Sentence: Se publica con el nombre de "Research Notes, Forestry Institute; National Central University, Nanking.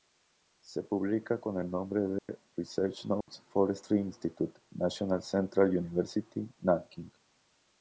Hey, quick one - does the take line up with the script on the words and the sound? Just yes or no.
no